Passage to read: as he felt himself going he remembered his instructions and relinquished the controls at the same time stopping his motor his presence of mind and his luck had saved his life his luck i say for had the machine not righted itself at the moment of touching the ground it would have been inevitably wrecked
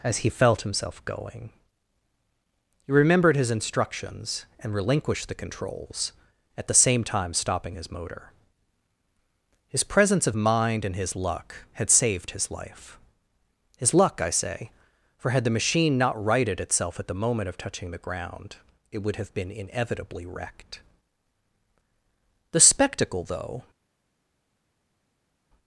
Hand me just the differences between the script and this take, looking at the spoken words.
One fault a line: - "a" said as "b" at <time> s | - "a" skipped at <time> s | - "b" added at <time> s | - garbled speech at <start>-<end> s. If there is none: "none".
- "the spectacle though" added at 22.5 s